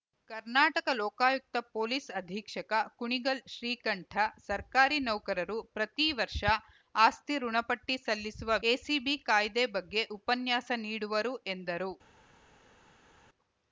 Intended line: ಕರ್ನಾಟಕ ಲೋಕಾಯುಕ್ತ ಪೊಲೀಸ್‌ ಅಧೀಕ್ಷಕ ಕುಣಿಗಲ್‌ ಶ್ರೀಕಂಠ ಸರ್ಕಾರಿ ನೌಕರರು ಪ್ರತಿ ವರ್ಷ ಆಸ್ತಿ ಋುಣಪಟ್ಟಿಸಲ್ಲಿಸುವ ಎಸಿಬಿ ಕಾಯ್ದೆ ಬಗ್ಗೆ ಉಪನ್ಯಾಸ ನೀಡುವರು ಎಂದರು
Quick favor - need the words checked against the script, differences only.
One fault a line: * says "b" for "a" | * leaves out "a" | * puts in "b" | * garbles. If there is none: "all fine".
all fine